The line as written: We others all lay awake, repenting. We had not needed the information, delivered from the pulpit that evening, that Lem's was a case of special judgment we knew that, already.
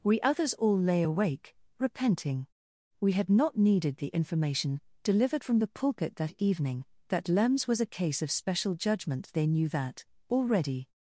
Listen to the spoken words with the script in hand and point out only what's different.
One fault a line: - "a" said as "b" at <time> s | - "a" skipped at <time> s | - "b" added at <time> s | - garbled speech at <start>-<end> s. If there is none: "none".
- "we" said as "they" at 9.3 s